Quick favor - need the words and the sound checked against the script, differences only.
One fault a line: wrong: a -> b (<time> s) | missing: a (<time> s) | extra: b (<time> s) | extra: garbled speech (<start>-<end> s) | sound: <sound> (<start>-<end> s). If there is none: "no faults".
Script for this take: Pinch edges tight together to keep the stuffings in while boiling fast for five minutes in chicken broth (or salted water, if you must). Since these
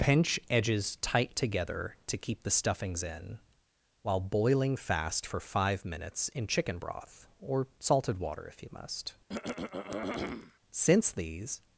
sound: throat clearing (9.3-10.6 s)